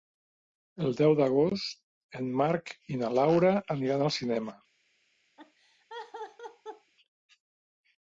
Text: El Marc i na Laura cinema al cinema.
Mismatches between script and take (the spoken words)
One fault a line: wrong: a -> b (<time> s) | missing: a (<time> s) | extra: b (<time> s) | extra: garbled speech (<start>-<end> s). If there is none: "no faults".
extra: deu d'agost en (1.0 s)
wrong: cinema -> aniran (3.8 s)